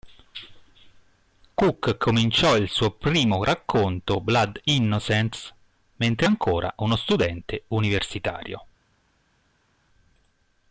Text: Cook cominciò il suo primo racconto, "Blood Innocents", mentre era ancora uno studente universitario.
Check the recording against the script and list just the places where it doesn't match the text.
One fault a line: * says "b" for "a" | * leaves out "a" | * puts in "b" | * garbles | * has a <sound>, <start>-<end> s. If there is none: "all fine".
* leaves out "era"